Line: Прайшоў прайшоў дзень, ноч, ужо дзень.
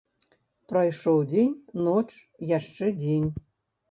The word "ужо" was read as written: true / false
false